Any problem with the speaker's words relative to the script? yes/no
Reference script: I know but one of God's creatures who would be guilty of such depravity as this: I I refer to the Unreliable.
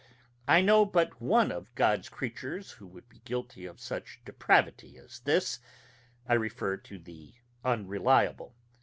yes